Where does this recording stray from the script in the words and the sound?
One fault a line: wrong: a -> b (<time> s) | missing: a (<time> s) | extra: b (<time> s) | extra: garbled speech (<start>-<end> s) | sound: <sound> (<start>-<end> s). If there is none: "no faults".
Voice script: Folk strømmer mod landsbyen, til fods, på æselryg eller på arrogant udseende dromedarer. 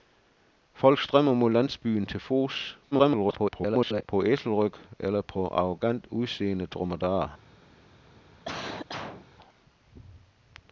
extra: garbled speech (2.9-4.0 s)
sound: cough (8.5-9.3 s)